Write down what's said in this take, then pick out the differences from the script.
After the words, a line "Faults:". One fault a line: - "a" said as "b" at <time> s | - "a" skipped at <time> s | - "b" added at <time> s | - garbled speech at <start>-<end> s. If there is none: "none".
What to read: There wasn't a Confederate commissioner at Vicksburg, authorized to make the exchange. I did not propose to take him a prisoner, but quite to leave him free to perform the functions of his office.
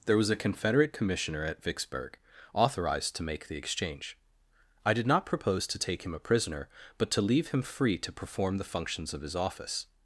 There was a Confederate commissioner at Vicksburg, authorized to make the exchange. I did not propose to take him a prisoner, but to leave him free to perform the functions of his office.
Faults:
- "wasn't" said as "was" at 0.2 s
- "quite" skipped at 7.1 s